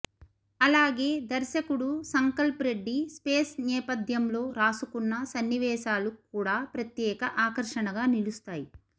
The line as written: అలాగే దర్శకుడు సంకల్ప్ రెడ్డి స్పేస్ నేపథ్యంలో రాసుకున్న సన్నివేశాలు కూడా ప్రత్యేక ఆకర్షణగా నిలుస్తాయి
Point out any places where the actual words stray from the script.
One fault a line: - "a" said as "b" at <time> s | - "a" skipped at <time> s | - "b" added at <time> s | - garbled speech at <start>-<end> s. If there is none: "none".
none